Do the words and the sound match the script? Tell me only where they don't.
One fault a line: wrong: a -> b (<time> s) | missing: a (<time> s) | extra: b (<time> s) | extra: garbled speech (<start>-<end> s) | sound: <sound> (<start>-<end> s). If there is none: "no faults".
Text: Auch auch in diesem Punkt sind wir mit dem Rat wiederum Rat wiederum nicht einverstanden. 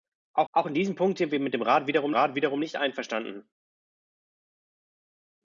no faults